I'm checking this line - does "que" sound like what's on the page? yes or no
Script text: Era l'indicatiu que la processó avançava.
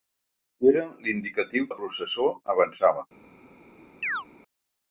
no